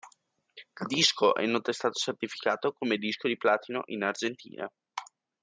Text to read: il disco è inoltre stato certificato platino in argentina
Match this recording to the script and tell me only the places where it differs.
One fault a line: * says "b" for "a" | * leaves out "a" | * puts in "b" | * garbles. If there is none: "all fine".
* puts in "come disco di"